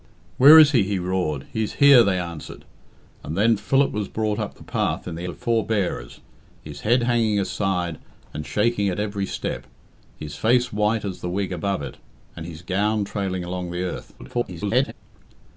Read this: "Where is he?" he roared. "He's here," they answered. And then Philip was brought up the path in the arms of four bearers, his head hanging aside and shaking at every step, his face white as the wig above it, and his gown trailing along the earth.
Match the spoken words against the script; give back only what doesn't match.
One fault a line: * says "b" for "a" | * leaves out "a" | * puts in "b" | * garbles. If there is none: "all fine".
* leaves out "arms"
* garbles